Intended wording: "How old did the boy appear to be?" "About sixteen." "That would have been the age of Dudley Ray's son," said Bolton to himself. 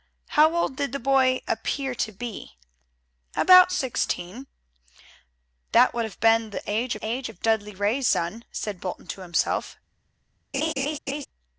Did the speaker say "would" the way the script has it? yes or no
yes